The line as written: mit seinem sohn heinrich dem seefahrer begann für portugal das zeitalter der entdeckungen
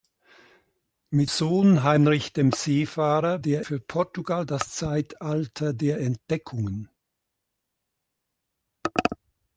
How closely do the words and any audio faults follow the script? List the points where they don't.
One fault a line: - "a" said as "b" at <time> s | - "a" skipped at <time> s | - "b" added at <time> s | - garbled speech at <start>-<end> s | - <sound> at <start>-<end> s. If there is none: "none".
- "seinem" skipped at 1.3 s
- "begann" said as "der" at 3.4 s